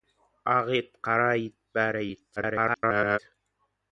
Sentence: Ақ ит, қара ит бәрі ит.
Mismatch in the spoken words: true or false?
true